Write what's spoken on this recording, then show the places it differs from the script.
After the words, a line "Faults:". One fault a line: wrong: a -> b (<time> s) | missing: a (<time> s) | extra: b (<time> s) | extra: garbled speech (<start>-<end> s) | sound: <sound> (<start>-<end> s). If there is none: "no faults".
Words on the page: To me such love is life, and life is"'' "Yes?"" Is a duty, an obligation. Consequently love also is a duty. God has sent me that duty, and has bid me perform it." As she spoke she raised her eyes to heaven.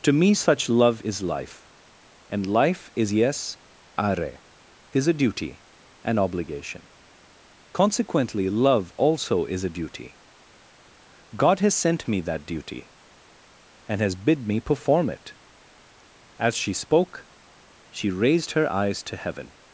To me such love is life, and life is"'' "Yes?"" are Is a duty, an obligation. Consequently love also is a duty. God has sent me that duty, and has bid me perform it." As she spoke she raised her eyes to heaven.
Faults:
extra: are (4.0 s)